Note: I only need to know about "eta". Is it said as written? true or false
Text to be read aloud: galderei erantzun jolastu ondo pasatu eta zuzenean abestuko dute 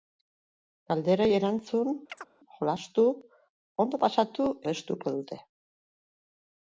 false